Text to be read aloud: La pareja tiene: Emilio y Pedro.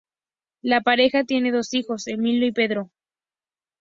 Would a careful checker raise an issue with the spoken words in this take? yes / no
yes